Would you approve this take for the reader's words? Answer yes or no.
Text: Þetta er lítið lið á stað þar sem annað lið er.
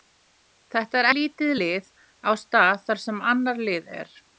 yes